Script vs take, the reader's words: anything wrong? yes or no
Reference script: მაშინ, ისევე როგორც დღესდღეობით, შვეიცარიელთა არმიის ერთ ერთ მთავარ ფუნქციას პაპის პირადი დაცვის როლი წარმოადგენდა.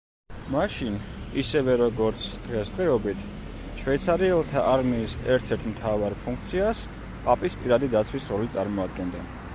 no